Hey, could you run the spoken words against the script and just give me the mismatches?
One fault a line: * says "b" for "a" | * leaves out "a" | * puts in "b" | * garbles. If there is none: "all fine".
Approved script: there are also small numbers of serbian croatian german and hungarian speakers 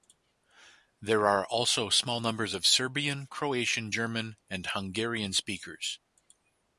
all fine